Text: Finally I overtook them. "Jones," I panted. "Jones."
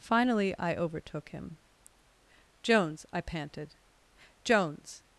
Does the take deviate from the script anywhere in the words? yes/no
yes